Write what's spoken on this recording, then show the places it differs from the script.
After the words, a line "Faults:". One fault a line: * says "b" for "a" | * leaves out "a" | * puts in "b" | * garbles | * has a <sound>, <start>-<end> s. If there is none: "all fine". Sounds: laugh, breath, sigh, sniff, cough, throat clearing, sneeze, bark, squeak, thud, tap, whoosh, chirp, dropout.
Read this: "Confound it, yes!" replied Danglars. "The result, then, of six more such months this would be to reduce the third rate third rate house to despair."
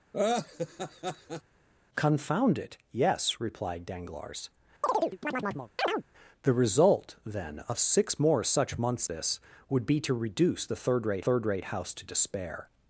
"Confound it, yes!" replied Danglars. "The result, then, of six more such months this would be to reduce the third rate third rate house to despair."
Faults:
* has a laugh, 0.1-1.4 s
* has a chirp, 4.8-6.0 s